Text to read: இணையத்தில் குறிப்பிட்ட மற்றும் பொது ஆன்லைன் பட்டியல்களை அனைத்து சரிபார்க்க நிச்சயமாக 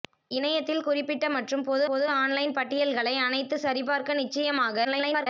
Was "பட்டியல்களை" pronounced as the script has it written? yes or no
yes